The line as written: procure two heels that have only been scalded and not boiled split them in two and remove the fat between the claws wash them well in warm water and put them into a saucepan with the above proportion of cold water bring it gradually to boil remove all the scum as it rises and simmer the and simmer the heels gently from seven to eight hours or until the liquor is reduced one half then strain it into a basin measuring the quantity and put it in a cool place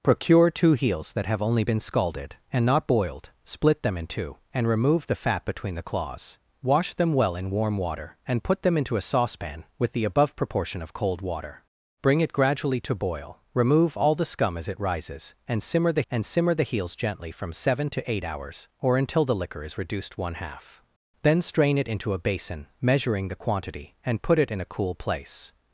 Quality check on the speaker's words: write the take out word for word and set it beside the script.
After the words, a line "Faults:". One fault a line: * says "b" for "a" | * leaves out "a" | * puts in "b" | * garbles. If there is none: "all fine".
procure two heels that have only been scalded and not boiled split them in two and remove the fat between the claws wash them well in warm water and put them into a saucepan with the above proportion of cold water bring it gradually to boil remove all the scum as it rises and simmer the and simmer the heels gently from seven to eight hours or until the liquor is reduced one half then strain it into a basin measuring the quantity and put it in a cool place
Faults:
all fine